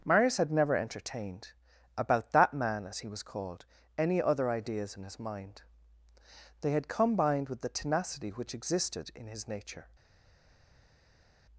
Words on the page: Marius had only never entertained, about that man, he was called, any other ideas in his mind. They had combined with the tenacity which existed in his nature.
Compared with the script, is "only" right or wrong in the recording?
wrong